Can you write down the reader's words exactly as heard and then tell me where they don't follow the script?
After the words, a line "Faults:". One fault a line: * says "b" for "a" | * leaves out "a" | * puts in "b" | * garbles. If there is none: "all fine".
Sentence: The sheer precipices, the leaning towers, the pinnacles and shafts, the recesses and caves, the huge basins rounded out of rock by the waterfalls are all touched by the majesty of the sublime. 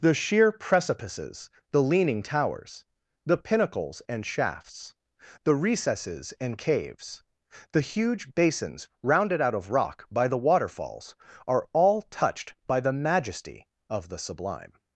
The sheer precipices, the leaning towers, the pinnacles and shafts, the recesses and caves, the huge basins rounded out of rock by the waterfalls are all touched by the majesty of the sublime.
Faults:
all fine